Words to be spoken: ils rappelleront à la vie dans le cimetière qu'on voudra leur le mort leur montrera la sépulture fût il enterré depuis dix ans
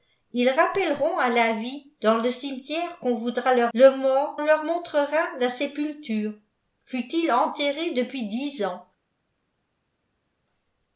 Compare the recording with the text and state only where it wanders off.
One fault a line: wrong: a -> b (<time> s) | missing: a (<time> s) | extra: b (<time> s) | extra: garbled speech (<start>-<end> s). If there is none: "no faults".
no faults